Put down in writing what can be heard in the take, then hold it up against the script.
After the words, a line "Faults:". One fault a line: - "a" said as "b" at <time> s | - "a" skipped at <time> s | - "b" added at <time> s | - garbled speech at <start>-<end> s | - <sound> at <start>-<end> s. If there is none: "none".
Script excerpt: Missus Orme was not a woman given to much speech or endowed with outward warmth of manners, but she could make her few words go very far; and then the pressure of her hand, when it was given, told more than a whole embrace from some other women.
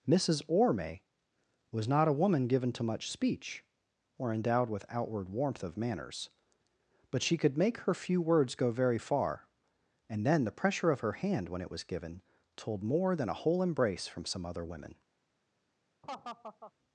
Missus Orme was not a woman given to much speech or endowed with outward warmth of manners, but she could make her few words go very far; and then the pressure of her hand, when it was given, told more than a whole embrace from some other women.
Faults:
- laugh at 16.0-16.7 s